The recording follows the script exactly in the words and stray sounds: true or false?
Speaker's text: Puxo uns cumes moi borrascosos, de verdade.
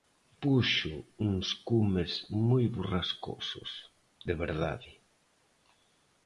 true